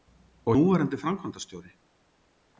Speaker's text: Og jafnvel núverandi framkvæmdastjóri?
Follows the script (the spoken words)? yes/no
no